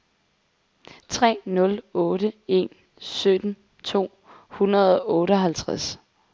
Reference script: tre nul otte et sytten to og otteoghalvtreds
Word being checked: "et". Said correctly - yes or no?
no